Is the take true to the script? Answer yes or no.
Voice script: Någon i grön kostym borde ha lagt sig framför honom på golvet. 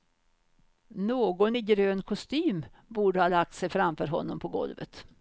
yes